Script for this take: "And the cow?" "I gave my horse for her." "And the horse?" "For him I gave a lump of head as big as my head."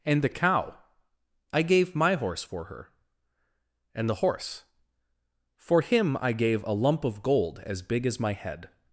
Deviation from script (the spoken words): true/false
true